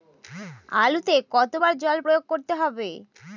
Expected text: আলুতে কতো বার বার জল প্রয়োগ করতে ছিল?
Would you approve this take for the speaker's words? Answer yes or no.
no